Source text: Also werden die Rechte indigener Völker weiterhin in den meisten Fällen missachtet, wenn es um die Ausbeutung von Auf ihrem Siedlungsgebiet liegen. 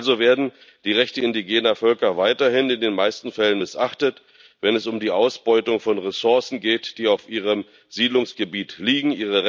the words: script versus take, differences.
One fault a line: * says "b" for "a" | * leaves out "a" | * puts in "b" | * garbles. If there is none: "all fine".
* puts in "Ressourcen geht die"